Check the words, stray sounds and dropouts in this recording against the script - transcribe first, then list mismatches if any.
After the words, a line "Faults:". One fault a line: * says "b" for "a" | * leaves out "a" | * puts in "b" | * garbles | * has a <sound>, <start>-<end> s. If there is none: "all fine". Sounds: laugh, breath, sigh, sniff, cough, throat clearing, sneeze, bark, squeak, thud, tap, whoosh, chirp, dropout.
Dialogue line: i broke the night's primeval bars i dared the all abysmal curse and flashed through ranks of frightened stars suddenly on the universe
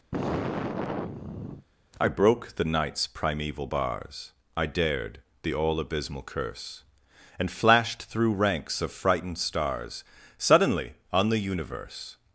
i broke the night's primeval bars i dared the all abysmal curse and flashed through ranks of frightened stars suddenly on the universe
Faults:
* has a sigh, 0.1-1.7 s